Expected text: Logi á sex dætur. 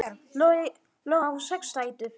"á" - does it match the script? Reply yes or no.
yes